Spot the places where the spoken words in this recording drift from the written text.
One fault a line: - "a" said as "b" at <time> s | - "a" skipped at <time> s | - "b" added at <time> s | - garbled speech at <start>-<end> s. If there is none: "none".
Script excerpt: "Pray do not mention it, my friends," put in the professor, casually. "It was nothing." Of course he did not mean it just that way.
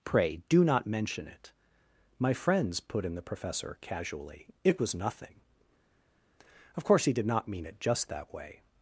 none